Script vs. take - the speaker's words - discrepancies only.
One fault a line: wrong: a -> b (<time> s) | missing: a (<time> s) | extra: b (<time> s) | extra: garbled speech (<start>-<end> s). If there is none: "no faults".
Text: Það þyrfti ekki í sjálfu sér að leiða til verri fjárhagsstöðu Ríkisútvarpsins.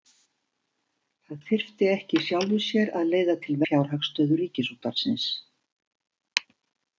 missing: verri (3.6 s)